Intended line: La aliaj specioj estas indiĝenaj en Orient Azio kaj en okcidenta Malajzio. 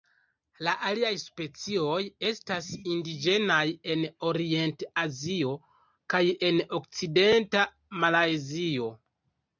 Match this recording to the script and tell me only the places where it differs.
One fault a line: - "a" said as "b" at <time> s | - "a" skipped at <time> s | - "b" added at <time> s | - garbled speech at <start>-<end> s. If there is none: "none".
none